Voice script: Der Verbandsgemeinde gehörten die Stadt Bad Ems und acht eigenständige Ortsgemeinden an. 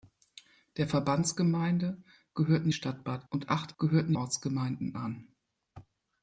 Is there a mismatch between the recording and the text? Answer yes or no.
yes